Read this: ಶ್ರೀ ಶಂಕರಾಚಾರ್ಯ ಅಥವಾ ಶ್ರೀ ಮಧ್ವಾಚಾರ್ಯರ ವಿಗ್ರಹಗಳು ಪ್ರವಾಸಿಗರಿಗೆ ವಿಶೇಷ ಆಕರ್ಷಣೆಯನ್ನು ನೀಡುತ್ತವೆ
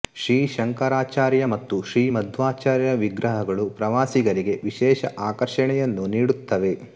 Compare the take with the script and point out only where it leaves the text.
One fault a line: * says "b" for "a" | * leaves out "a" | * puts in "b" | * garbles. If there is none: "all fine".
* says "ಮತ್ತು" for "ಅಥವಾ"